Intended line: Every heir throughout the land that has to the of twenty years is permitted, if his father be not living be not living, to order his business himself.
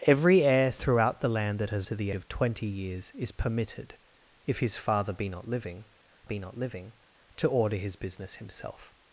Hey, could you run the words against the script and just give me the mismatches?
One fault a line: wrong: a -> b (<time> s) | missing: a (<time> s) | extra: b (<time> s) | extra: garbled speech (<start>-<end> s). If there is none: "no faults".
no faults